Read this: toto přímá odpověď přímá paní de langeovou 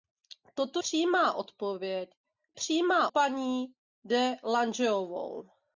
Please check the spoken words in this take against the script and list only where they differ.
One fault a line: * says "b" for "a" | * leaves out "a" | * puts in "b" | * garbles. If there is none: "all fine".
all fine